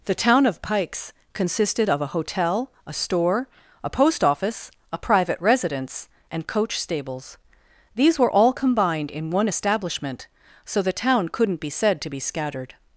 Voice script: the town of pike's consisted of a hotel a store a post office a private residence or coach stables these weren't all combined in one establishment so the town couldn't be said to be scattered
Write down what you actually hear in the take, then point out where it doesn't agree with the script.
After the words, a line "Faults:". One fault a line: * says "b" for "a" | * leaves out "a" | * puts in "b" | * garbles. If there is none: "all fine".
the town of pike's consisted of a hotel a store a post office a private residence and coach stables these were all combined in one establishment so the town couldn't be said to be scattered
Faults:
* says "and" for "or"
* says "were" for "weren't"